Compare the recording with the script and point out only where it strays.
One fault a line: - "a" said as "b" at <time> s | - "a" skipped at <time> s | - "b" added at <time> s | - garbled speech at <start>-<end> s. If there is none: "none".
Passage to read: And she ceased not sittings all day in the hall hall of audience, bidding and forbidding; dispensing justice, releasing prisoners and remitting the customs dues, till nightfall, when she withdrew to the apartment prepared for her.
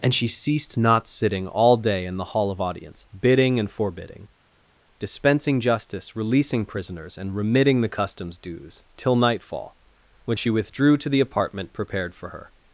- "sittings" said as "sitting" at 1.1 s
- "hall" skipped at 2.5 s